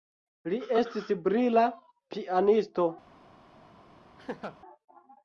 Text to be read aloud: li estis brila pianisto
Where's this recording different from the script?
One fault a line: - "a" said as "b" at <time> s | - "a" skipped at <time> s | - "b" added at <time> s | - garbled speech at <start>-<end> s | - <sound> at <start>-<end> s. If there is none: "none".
- laugh at 4.2-4.6 s